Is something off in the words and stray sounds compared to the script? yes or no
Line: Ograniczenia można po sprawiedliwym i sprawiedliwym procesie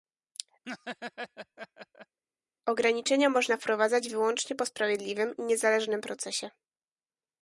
yes